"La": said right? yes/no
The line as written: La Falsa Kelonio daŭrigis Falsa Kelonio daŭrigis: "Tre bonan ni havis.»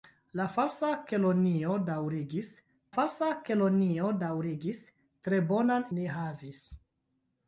yes